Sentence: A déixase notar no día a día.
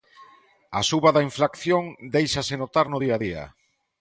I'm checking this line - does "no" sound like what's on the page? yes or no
yes